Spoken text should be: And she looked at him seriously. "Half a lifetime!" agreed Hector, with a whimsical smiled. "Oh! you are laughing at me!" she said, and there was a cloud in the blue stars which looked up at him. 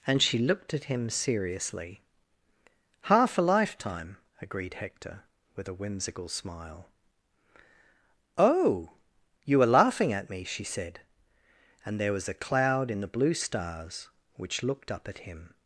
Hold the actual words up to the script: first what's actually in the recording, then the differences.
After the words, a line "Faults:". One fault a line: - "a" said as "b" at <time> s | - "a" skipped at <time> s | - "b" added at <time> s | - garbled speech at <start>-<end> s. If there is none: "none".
And she looked at him seriously. "Half a lifetime!" agreed Hector, with a whimsical smile. "Oh! you are laughing at me!" she said, and there was a cloud in the blue stars which looked up at him.
Faults:
- "smiled" said as "smile" at 6.3 s